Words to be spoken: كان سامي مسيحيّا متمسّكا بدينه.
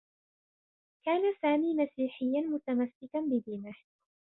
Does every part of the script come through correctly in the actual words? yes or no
yes